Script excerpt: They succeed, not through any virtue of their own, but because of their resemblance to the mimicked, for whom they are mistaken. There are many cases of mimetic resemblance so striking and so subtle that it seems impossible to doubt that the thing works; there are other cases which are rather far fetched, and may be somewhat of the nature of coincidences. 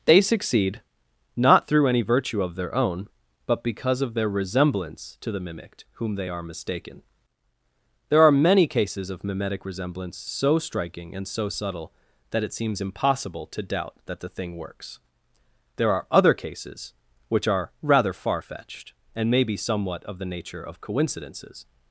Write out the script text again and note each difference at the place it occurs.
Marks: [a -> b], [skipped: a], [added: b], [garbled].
They succeed, not through any virtue of their own, but because of their resemblance to the mimicked, [skipped: for] whom they are mistaken. There are many cases of mimetic resemblance so striking and so subtle that it seems impossible to doubt that the thing works; there are other cases which are rather far fetched, and may be somewhat of the nature of coincidences.